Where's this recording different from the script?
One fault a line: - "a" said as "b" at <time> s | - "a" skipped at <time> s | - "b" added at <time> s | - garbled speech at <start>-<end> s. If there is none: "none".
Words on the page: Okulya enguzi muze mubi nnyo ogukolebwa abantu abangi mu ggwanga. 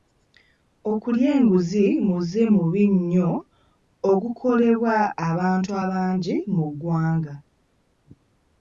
none